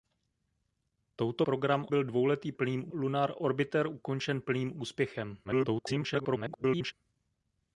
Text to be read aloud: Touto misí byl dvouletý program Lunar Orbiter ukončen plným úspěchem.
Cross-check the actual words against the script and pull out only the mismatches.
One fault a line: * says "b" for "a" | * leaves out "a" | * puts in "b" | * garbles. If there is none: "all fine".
* says "program" for "misí"
* says "plným" for "program"
* garbles